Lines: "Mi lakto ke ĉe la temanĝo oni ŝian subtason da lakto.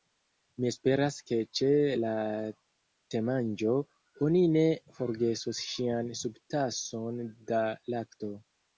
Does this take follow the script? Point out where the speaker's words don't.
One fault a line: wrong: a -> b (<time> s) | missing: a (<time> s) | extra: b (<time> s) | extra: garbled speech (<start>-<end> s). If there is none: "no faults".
wrong: lakto -> esperas (0.7 s)
extra: ne forgesos (4.6 s)